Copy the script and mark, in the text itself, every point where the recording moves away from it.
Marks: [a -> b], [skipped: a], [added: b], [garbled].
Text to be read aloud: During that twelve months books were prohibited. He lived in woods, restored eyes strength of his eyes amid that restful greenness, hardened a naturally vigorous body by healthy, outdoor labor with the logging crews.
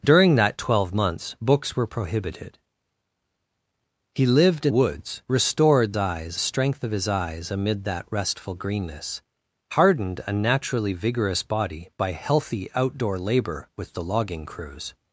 During that twelve months books were prohibited. He lived in woods, restored eyes strength of his eyes amid that restful greenness, hardened a naturally vigorous body by healthy, outdoor labor with the logging crews.